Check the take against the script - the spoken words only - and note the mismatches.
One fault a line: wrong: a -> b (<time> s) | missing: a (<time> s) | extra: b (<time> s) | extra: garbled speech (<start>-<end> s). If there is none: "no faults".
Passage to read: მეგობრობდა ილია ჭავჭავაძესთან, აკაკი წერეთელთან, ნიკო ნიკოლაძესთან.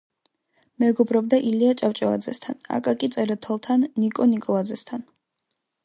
no faults